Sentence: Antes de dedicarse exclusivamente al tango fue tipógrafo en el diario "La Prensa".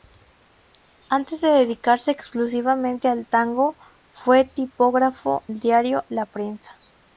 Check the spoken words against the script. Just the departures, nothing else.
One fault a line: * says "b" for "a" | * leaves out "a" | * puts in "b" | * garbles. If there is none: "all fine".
* leaves out "en"